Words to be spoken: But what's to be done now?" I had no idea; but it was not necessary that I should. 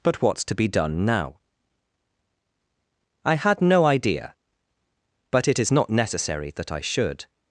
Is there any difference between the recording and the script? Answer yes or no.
yes